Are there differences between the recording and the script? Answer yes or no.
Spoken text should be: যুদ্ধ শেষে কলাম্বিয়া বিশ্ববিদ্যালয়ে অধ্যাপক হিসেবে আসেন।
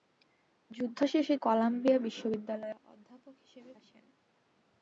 no